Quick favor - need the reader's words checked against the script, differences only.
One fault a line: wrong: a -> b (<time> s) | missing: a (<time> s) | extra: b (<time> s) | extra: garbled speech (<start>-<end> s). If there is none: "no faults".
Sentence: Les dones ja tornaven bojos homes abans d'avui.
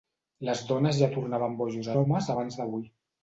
no faults